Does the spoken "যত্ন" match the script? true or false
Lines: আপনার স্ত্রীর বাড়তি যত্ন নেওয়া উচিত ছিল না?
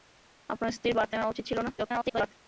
false